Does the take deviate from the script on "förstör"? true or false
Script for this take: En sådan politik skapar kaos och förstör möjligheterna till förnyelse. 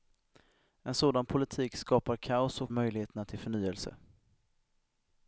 true